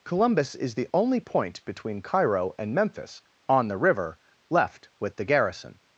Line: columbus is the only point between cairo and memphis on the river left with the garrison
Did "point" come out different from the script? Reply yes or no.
no